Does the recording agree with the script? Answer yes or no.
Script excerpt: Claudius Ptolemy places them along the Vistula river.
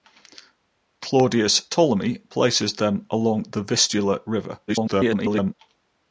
no